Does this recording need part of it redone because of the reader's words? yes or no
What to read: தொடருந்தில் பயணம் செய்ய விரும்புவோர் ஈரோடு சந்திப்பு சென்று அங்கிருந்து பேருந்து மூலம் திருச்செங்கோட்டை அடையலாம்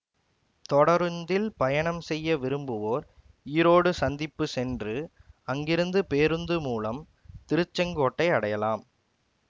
no